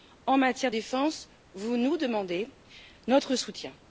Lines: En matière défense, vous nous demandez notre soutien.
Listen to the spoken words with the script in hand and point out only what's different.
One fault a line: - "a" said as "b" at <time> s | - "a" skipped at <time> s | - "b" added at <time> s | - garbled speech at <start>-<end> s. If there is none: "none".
none